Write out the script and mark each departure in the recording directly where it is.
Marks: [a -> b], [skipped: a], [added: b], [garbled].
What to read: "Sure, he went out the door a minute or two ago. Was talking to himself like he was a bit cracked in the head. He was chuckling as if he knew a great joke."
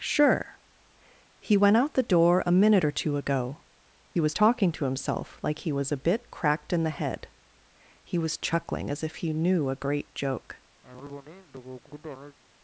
"Sure, he went out the door a minute or two ago. Was talking to himself like he was a bit cracked in the head. He was chuckling as if he knew a great joke."